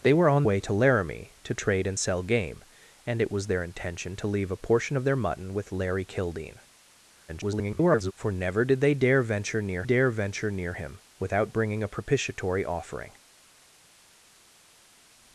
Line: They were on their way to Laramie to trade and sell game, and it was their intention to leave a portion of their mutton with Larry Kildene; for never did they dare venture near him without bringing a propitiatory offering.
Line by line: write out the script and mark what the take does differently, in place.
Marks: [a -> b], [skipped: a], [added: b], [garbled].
They were on [skipped: their] way to Laramie to trade and sell game, and it was their intention to leave a portion of their mutton with Larry Kildene; [garbled] for never did they dare venture near [added: dare venture near] him without bringing a propitiatory offering.